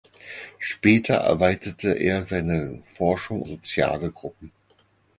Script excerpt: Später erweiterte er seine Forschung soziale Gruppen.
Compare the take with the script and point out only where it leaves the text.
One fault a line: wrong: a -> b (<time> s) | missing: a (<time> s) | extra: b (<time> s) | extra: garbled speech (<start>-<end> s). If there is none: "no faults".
no faults